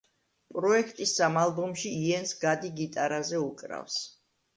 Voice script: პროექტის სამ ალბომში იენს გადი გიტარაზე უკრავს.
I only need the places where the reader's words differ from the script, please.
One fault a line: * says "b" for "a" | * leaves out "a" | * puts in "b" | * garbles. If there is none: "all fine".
all fine